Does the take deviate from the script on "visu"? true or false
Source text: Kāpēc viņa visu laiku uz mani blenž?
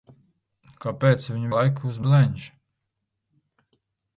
true